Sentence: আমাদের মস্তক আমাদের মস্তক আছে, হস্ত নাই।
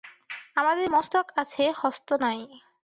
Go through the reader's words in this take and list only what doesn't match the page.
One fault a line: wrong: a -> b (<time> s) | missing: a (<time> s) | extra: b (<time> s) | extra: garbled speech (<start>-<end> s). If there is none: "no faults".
missing: আমাদের মস্তক (1.2 s)